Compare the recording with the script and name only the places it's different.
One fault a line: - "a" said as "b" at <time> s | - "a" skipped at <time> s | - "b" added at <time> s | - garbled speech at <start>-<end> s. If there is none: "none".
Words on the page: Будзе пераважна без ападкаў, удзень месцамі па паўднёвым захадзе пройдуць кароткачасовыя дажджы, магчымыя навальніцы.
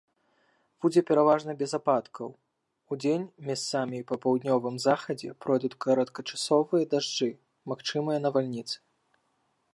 none